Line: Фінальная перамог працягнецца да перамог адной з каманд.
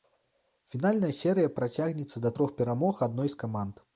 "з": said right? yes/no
yes